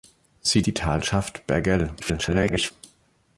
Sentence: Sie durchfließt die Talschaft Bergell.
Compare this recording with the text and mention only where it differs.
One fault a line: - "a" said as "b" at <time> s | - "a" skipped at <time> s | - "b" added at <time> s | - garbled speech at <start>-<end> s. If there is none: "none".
- "durchfließt" skipped at 0.6 s
- garbled speech at 2.0-2.7 s